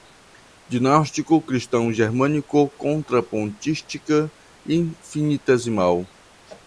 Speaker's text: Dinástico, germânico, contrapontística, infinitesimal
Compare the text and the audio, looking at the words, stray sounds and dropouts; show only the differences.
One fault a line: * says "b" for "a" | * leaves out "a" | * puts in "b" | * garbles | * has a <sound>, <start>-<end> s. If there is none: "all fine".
* puts in "cristão"